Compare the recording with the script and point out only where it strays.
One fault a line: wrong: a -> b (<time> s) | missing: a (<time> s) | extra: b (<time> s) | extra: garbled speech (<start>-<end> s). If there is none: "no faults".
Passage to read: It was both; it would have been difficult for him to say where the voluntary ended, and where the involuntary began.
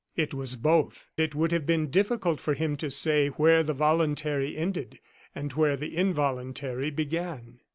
no faults